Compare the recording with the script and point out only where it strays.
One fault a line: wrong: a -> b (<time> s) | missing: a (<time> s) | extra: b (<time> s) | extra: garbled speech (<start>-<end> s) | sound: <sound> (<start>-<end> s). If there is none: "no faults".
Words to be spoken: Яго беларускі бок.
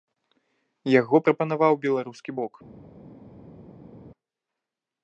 extra: прапанаваў (1.3 s)